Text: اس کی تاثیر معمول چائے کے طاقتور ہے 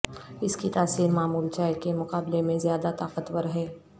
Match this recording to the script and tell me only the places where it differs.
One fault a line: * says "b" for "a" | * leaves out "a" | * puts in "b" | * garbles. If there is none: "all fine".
* puts in "مقابلے میں زیادہ"